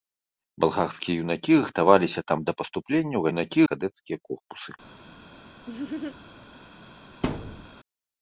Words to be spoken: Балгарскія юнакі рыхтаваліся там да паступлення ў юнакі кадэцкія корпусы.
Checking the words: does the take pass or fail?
pass